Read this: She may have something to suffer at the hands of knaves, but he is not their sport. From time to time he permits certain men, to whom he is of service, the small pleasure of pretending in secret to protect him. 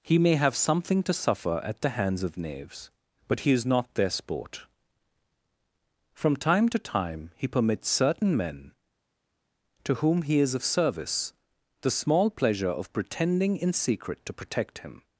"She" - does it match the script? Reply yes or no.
no